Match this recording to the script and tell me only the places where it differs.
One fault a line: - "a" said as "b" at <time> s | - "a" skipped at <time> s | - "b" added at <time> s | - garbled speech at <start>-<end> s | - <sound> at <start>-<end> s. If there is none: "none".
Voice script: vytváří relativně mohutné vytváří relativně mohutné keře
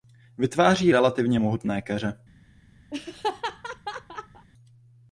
- "vytváří relativně mohutné" skipped at 1.8 s
- laugh at 2.9-4.5 s